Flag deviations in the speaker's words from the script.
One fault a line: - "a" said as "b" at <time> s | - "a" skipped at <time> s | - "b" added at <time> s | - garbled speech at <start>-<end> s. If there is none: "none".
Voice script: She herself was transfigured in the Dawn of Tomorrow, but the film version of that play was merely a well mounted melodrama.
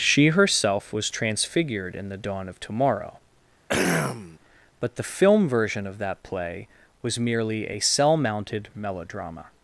- "well" said as "cell" at 7.8 s